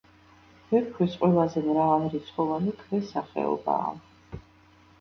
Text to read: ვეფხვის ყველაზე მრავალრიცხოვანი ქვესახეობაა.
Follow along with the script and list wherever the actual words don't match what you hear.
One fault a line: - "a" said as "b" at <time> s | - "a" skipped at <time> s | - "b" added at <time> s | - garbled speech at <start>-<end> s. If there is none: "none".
none